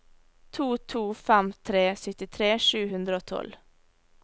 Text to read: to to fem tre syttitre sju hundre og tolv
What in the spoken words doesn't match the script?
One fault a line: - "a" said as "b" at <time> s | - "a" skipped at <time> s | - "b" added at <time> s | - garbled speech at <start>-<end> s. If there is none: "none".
none